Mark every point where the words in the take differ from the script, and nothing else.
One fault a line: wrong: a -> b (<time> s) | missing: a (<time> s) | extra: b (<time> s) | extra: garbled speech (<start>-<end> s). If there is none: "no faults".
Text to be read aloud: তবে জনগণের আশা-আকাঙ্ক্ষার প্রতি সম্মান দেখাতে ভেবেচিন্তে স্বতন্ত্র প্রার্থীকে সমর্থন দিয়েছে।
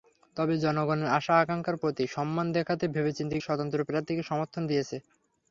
no faults